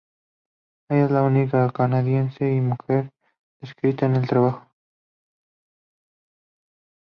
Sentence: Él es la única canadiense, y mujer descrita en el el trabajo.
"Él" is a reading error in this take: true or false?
true